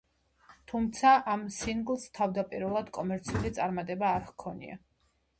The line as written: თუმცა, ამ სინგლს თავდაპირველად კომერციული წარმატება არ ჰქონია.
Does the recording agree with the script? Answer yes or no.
yes